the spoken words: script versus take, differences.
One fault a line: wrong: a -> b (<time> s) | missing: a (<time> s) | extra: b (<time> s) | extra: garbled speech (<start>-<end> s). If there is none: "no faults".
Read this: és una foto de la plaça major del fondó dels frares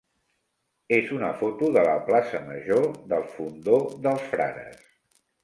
no faults